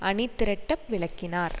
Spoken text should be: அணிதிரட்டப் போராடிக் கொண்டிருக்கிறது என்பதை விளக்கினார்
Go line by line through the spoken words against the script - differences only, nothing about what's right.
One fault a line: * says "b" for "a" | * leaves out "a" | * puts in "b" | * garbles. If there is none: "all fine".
* leaves out "போராடிக் கொண்டிருக்கிறது என்பதை"